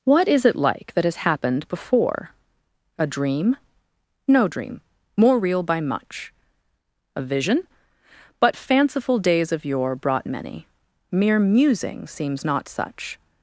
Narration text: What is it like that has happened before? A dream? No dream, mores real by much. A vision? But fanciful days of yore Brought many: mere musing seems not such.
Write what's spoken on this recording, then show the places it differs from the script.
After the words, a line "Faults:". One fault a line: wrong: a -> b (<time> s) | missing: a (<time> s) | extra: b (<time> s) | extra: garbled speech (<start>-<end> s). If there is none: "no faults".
What is it like that has happened before? A dream? No dream, more real by much. A vision? But fanciful days of yore Brought many: mere musing seems not such.
Faults:
wrong: mores -> more (5.2 s)